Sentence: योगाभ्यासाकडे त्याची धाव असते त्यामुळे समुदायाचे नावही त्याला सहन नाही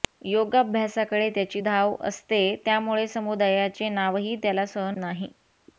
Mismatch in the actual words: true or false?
false